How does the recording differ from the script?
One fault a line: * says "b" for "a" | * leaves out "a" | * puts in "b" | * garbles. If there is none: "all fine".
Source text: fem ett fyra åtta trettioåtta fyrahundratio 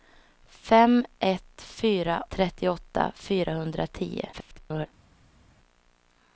* leaves out "åtta"
* garbles